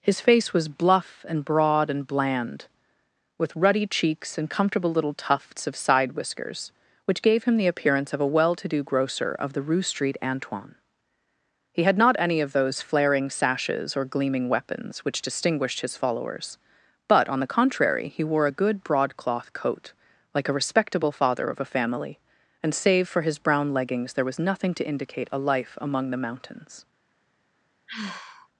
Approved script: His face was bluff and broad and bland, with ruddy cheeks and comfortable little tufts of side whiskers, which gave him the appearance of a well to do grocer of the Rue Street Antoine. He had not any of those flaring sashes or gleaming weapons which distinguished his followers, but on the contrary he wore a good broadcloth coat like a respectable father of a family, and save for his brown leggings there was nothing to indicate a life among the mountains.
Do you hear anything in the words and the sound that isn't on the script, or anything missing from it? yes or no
yes